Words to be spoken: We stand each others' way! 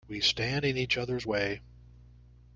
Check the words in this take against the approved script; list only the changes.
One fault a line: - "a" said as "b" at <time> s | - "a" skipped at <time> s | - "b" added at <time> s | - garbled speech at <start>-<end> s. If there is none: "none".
- "in" added at 0.6 s